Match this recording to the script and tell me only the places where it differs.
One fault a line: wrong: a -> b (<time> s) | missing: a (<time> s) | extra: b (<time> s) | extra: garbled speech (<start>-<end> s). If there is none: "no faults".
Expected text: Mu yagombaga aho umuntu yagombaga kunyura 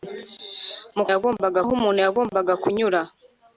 no faults